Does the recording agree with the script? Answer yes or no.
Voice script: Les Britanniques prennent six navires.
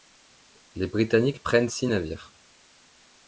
yes